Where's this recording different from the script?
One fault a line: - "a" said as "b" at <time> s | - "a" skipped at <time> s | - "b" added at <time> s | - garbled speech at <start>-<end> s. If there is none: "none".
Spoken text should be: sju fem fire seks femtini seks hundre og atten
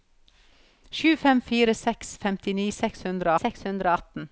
- "seks hundre" added at 3.4 s